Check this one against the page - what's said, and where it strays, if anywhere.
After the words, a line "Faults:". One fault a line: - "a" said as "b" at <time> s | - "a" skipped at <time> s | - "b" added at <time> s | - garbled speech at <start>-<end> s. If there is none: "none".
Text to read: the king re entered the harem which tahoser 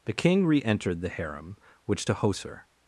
the king re entered the harem which tahoser
Faults:
none